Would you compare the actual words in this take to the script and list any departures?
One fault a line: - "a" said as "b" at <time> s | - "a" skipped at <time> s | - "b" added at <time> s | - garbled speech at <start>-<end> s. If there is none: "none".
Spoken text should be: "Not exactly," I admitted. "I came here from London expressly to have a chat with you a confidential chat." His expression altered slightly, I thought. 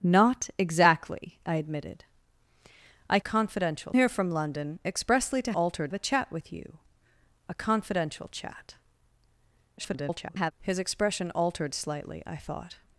- "came" said as "confidential" at 3.2 s
- "have" said as "altered" at 5.5 s
- garbled speech at 9.8-10.5 s